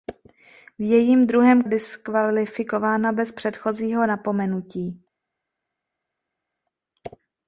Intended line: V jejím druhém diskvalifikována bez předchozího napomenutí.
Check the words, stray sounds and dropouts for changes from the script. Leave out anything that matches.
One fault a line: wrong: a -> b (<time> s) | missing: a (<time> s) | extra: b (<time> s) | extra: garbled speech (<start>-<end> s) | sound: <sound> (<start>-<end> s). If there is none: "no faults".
no faults